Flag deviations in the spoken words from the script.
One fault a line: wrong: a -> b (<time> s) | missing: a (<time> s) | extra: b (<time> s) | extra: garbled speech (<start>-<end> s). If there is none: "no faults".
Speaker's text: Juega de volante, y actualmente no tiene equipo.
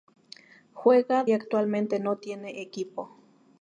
missing: de volante (1.2 s)